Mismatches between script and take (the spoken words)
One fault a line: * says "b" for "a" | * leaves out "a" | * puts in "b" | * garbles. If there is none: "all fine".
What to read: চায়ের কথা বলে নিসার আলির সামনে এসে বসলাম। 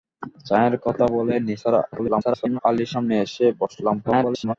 * garbles
* garbles